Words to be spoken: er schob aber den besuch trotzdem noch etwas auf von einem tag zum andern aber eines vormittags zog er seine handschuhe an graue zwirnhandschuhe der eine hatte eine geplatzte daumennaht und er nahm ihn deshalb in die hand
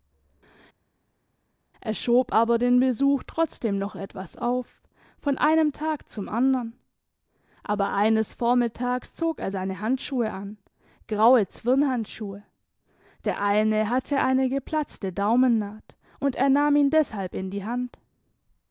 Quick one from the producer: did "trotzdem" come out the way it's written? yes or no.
yes